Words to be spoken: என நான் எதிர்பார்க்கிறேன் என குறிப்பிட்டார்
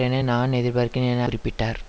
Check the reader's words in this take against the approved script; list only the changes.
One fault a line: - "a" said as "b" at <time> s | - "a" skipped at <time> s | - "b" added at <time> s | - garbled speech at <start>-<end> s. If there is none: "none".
none